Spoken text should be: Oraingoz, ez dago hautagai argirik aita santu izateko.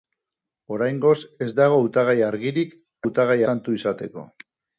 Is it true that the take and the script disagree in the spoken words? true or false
true